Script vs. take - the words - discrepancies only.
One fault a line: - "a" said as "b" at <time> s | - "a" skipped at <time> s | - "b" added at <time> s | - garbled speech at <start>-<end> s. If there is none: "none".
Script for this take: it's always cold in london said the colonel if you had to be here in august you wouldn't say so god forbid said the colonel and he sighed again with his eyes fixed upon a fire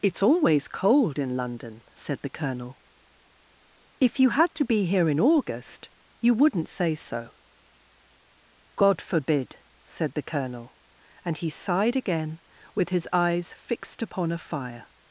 none